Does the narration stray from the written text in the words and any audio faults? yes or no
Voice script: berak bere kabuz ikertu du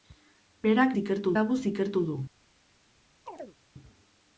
yes